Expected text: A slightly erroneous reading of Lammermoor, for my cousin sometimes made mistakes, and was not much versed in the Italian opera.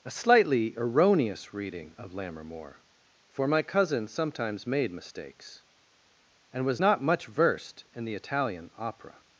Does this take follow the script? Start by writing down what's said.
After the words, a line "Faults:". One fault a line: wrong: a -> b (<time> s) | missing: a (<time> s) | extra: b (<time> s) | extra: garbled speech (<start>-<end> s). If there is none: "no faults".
A slightly erroneous reading of Lammermoor, for my cousin sometimes made mistakes, and was not much versed in the Italian opera.
Faults:
no faults